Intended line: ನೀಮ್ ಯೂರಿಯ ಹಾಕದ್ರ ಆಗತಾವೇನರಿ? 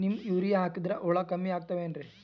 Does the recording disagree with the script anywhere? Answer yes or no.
yes